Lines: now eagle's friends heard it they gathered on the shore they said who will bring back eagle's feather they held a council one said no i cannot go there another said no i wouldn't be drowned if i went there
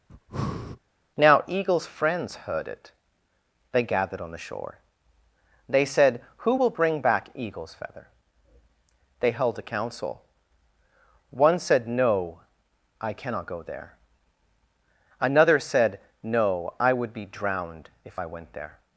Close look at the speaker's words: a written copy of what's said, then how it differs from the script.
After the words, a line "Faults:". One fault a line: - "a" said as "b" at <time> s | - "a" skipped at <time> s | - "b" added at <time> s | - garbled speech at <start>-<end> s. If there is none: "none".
now eagle's friends heard it they gathered on the shore they said who will bring back eagle's feather they held a council one said no i cannot go there another said no i would be drowned if i went there
Faults:
- "wouldn't" said as "would" at 16.9 s